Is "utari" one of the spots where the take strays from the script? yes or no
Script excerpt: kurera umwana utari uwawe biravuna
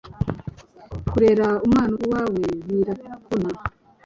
yes